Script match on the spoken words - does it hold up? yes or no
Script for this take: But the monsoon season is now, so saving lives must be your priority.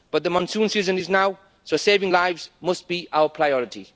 no